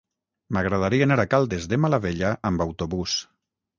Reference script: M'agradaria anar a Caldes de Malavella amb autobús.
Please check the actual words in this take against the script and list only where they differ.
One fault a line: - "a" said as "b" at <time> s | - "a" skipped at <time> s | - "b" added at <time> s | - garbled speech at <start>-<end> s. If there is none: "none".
none